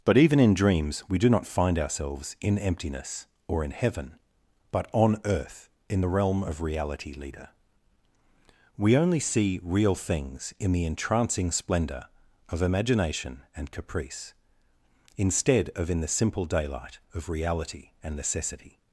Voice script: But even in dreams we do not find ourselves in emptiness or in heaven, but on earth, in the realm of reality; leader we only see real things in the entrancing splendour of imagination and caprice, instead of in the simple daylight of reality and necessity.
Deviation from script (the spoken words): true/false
false